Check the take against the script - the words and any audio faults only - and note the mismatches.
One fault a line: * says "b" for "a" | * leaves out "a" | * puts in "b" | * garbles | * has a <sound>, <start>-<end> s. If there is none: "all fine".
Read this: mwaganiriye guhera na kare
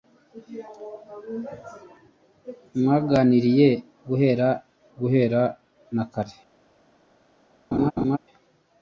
* puts in "guhera"
* has a laugh, 7.7-8.2 s